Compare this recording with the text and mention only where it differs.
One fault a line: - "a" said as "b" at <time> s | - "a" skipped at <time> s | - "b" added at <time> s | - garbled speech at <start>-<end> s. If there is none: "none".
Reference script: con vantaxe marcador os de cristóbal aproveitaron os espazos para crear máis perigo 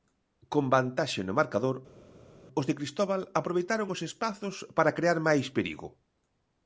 - "no" added at 1.2 s